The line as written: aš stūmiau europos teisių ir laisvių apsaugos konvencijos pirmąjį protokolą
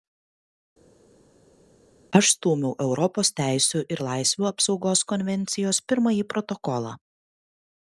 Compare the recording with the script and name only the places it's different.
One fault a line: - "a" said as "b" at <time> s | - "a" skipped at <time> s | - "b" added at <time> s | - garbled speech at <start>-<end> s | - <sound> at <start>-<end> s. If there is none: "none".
none